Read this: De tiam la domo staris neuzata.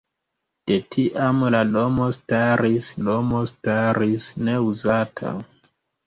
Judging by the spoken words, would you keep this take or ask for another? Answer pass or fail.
fail